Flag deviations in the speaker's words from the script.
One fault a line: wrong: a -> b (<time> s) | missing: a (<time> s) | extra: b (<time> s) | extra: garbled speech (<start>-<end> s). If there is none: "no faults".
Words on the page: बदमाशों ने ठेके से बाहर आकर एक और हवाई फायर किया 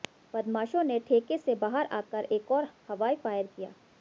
no faults